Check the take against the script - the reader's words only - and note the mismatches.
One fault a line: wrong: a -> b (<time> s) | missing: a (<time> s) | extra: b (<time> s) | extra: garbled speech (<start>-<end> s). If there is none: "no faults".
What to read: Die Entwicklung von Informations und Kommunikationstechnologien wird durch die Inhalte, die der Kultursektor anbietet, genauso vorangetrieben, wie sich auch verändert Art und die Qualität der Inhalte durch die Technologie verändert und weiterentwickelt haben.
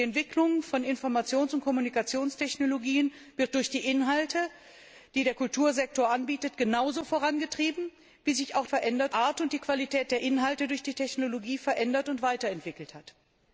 no faults